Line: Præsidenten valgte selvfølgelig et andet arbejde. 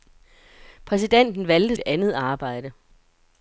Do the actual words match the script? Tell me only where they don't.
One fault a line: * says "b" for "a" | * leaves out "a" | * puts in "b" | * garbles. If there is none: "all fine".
* leaves out "selvfølgelig"